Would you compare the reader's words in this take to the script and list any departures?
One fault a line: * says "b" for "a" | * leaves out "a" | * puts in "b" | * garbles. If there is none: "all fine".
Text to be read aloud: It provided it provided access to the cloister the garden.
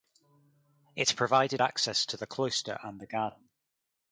* leaves out "it provided"
* puts in "and"